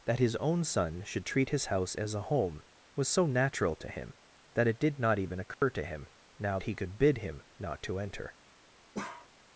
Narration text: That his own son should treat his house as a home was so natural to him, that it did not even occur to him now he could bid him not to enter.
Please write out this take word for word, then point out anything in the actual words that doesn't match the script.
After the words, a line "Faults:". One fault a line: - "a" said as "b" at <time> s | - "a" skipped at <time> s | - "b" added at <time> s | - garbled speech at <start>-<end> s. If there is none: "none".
That his own son should treat his house as a home was so natural to him, that it did not even occur to him now he could bid him not to enter.
Faults:
none